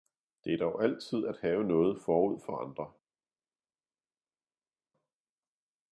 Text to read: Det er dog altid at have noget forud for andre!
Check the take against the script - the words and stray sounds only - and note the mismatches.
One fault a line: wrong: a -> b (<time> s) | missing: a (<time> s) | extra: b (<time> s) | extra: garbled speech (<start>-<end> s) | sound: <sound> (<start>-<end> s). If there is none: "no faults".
no faults